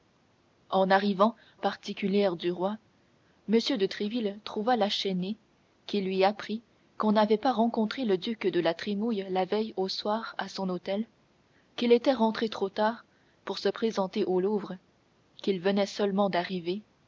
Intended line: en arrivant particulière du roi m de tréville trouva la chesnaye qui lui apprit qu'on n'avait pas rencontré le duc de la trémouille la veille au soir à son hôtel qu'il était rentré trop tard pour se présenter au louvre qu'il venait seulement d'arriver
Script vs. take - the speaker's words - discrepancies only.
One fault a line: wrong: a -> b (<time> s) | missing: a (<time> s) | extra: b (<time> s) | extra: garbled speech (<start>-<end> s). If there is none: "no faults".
no faults